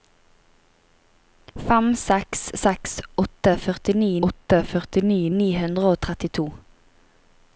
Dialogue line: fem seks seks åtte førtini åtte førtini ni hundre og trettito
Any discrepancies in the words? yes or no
no